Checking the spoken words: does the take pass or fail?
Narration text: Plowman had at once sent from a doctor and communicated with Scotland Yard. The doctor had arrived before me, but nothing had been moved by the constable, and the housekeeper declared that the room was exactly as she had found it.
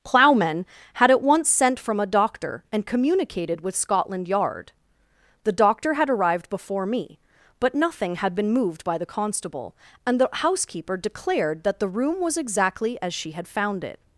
pass